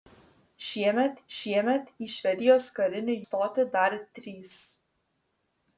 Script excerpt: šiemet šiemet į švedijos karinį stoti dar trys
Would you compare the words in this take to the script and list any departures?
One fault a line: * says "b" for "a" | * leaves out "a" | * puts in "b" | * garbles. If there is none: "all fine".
all fine